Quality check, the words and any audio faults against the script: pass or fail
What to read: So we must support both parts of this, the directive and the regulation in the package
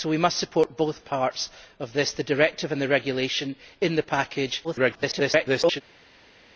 fail